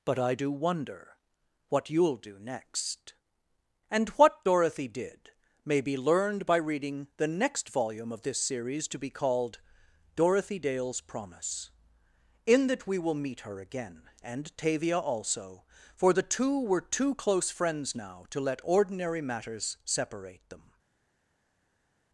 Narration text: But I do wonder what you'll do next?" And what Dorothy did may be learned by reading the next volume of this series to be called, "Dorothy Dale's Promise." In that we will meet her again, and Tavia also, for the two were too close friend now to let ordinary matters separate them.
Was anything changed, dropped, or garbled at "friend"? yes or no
yes